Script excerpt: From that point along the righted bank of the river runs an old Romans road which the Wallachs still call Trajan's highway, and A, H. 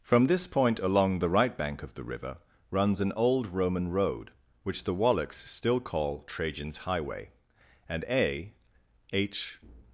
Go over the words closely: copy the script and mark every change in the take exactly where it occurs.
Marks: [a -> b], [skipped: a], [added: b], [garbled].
From [that -> this] point along the [righted -> right] bank of the river runs an old [Romans -> Roman] road which the Wallachs still call Trajan's highway, and A, H.